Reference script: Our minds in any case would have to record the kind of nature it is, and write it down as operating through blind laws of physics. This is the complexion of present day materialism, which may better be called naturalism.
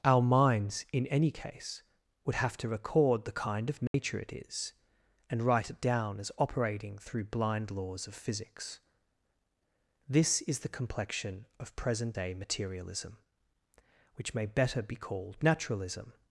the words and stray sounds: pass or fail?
fail